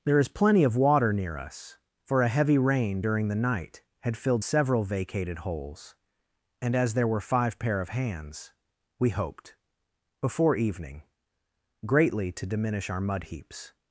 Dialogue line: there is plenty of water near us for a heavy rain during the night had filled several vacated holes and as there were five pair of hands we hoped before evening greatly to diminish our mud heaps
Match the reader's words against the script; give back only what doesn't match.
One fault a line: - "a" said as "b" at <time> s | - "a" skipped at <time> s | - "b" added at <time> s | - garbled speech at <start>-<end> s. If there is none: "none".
none